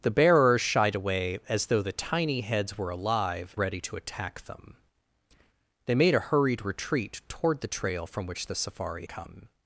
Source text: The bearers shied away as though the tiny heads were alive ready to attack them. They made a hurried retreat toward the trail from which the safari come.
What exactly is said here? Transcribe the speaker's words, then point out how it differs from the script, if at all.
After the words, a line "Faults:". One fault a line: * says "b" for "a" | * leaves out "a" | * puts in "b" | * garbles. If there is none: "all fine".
The bearers shied away as though the tiny heads were alive ready to attack them. They made a hurried retreat toward the trail from which the safari come.
Faults:
all fine